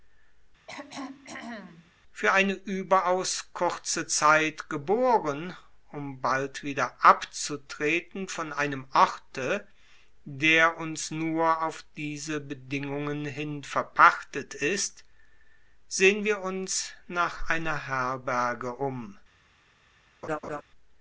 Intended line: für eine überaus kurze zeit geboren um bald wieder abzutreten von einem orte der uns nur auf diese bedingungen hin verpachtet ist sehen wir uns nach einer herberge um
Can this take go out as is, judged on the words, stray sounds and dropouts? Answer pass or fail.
fail